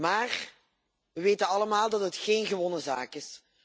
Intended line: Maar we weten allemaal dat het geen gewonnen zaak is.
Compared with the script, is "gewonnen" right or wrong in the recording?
right